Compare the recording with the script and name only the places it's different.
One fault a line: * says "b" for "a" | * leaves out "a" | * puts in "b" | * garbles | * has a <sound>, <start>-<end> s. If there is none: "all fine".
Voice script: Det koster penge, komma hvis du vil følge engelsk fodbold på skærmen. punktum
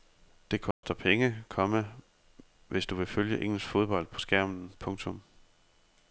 * has a dropout, 0.7-0.8 s